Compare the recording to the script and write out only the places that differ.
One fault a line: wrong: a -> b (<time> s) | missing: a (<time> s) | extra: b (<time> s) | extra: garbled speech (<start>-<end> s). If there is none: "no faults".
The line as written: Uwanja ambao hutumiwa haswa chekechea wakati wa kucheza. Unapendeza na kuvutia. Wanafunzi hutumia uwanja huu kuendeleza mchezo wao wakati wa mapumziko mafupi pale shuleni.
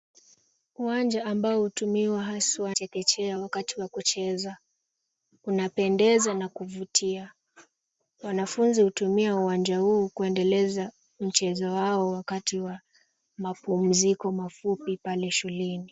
no faults